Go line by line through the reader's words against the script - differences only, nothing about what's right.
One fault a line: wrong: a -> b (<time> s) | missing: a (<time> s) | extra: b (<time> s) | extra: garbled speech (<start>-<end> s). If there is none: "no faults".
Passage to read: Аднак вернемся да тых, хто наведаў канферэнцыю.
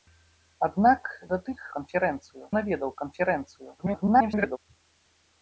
missing: вернемся (1.0 s)
wrong: хто -> канферэнцыю (1.8 s)
extra: garbled speech (3.8-4.6 s)